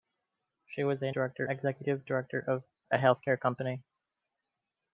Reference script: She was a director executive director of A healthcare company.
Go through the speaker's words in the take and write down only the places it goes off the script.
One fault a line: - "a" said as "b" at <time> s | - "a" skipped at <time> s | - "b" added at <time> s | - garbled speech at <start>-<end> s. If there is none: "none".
none